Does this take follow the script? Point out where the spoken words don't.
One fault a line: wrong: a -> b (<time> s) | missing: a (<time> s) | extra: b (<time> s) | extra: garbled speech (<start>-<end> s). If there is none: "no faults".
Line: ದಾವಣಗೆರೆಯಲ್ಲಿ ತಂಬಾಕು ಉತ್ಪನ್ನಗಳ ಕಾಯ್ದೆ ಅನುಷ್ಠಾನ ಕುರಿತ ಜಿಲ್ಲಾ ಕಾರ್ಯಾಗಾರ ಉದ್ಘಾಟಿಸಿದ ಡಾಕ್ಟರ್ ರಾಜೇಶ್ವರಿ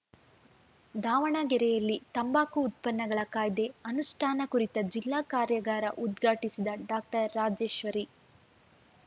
no faults